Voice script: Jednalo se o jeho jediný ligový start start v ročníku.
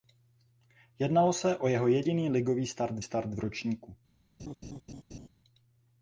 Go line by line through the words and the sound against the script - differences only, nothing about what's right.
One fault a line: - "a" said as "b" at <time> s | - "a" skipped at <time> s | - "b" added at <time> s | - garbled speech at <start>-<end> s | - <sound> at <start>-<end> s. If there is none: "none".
- laugh at 4.4-5.3 s